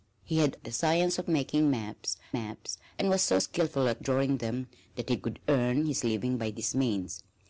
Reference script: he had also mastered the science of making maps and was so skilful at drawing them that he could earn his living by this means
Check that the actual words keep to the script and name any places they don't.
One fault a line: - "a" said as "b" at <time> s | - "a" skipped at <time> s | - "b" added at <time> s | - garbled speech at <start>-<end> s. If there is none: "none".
- "also mastered" skipped at 0.6 s
- "maps" added at 2.3 s